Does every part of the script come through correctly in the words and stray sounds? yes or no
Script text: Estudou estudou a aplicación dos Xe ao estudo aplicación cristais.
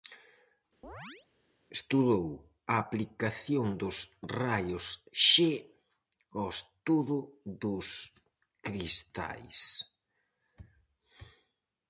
no